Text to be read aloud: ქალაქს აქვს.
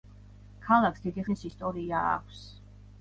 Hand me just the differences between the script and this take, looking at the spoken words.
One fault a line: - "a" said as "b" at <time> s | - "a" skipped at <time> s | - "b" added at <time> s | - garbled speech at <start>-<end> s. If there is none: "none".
- "დიდი ხნის ისტორია" added at 1.1 s